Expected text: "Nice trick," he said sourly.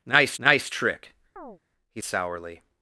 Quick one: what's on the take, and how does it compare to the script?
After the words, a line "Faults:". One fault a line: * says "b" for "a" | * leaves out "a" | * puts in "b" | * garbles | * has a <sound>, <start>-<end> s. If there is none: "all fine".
"Nice nice trick," he sourly.
Faults:
* puts in "nice"
* has a chirp, 1.4-1.6 s
* leaves out "said"